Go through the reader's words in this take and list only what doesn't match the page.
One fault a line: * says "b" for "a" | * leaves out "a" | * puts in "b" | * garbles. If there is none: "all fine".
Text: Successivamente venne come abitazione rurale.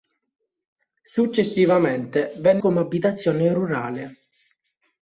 all fine